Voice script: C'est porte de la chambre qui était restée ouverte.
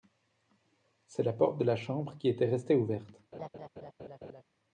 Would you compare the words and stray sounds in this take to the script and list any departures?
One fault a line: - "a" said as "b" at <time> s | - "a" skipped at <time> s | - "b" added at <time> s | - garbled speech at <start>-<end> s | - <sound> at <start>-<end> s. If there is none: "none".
- "la" added at 1.2 s
- laugh at 3.3-4.4 s